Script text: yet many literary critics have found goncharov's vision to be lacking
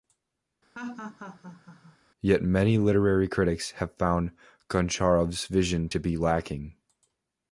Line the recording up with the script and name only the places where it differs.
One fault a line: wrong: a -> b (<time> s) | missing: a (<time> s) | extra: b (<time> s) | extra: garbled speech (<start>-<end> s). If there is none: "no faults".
no faults